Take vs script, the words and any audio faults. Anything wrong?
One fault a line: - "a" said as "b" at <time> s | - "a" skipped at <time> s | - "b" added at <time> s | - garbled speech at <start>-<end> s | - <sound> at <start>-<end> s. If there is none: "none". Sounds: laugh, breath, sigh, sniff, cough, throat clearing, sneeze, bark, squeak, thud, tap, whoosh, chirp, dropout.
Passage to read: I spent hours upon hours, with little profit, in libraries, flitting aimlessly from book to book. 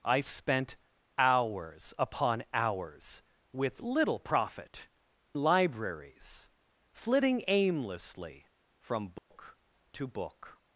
- "in" skipped at 4.9 s
- dropout at 9.2-9.3 s